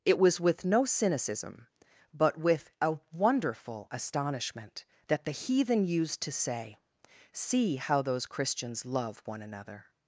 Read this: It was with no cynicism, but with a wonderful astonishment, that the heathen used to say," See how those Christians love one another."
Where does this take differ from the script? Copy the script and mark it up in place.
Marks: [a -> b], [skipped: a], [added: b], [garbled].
It was with no cynicism, but with a wonderful astonishment, that the heathen used to say," See how those Christians love one another."